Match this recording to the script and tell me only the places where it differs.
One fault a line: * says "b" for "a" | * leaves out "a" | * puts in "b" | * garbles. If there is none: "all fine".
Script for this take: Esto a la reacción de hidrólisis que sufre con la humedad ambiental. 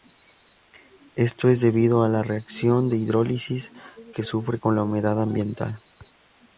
* puts in "es debido"